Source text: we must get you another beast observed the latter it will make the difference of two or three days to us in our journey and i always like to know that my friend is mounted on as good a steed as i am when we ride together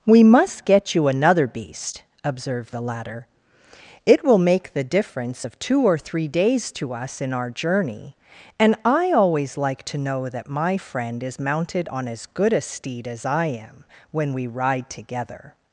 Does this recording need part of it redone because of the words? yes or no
no